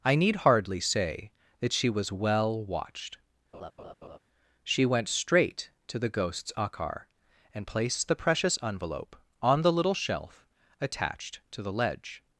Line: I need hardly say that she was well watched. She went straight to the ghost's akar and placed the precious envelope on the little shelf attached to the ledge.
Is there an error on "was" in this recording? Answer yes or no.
no